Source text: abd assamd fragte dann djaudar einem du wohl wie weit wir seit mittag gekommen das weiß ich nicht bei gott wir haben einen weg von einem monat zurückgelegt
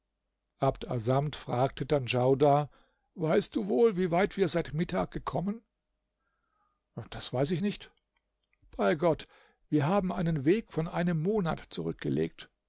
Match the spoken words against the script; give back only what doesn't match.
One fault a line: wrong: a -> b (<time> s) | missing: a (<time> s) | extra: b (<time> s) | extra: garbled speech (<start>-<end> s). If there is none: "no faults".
wrong: einem -> weißt (3.1 s)